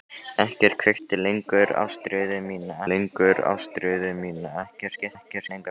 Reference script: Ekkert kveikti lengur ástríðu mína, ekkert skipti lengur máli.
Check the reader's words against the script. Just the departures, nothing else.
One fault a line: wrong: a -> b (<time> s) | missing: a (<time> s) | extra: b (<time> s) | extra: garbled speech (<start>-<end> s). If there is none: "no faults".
extra: lengur ástríðu mína (2.9 s)
wrong: lengur -> ekkert (5.2 s)